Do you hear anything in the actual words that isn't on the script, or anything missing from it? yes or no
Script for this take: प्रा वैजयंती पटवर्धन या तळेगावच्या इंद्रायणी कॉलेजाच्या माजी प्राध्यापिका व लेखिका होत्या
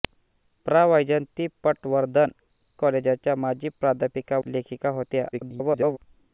yes